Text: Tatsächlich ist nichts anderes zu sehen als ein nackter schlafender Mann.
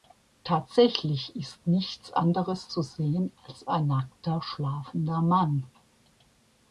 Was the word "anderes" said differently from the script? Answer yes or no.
no